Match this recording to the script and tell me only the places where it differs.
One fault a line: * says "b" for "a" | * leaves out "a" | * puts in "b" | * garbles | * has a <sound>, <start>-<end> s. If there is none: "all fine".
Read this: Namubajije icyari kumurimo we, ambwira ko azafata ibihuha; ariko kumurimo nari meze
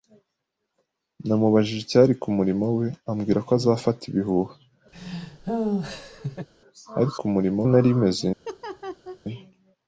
* has a laugh, 4.9-6.5 s
* has a laugh, 8.4-9.2 s